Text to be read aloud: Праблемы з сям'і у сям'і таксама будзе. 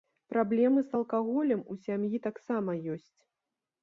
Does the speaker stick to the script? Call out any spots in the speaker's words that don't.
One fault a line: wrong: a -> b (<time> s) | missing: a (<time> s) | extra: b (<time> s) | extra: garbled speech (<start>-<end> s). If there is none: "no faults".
wrong: сям'і -> алкаголем (1.0 s)
wrong: будзе -> ёсць (3.0 s)